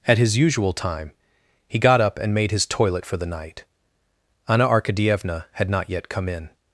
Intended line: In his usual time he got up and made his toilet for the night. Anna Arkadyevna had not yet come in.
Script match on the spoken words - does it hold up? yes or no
no